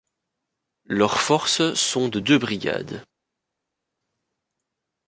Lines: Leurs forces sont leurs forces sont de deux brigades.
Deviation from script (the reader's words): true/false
true